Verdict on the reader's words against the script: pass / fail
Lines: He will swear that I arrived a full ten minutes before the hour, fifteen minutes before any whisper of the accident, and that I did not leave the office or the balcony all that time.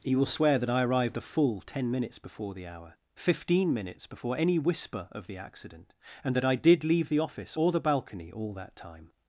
fail